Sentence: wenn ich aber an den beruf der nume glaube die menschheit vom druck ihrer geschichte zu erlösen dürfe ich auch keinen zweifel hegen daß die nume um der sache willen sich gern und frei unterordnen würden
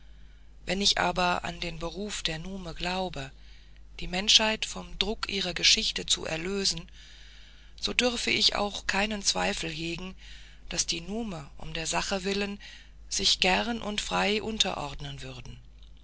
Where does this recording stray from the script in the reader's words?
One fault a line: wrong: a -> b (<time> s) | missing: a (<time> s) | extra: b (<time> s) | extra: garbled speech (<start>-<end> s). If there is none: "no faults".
extra: so (7.8 s)